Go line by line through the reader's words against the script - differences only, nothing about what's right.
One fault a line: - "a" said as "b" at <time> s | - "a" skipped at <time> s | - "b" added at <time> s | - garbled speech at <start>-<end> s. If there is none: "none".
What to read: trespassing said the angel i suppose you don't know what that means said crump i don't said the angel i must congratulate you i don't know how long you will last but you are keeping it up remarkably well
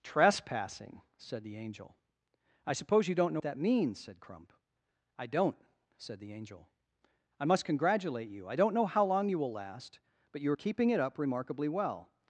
- "what" skipped at 3.4 s